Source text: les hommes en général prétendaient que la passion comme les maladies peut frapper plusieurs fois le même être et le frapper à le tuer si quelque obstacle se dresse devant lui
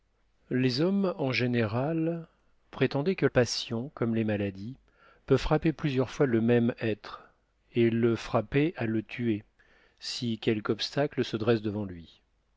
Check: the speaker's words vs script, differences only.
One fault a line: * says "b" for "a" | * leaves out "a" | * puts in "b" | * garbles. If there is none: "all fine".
* leaves out "la"